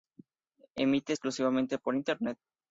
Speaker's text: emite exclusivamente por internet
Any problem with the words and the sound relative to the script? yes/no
no